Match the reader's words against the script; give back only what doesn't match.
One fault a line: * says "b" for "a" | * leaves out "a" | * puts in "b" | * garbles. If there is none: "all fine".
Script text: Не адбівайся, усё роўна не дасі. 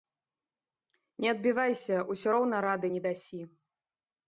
* puts in "рады"